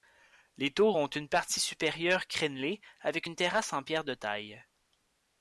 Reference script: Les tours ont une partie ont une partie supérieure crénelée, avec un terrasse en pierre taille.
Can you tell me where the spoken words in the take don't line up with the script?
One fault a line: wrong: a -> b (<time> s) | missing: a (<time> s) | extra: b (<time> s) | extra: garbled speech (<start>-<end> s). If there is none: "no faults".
missing: ont une partie (1.6 s)
wrong: un -> une (3.2 s)
extra: de (4.0 s)